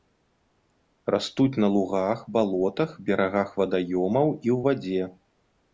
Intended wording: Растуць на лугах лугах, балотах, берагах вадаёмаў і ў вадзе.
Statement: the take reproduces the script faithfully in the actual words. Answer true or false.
false